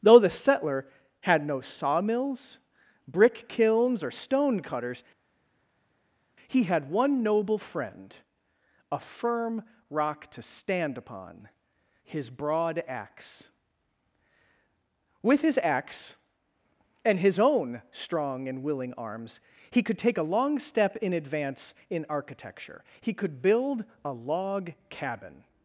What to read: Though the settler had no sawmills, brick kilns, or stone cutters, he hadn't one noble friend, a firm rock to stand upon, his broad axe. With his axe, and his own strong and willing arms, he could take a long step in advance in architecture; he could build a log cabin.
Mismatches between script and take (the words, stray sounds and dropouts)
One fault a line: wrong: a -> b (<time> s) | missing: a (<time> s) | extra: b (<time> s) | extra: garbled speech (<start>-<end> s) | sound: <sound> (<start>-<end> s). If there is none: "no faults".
wrong: hadn't -> had (6.6 s)